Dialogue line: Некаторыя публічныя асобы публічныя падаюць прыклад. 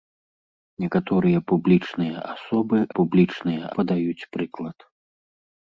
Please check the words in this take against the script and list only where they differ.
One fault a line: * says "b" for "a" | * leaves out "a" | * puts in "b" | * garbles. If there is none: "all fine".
all fine